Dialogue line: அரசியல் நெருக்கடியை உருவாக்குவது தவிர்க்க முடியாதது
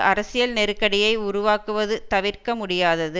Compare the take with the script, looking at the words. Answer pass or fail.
pass